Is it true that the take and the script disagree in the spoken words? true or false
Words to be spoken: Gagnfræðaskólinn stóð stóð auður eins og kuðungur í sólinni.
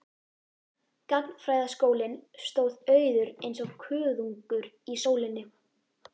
true